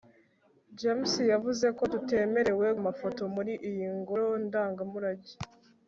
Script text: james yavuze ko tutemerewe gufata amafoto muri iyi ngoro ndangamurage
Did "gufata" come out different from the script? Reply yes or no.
yes